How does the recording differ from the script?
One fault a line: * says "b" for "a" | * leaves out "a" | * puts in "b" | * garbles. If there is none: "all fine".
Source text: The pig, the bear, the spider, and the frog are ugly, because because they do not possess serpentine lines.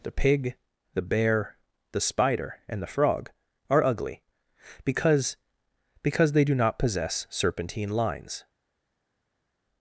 all fine